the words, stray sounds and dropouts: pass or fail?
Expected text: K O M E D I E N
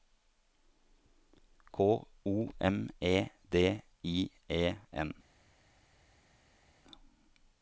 pass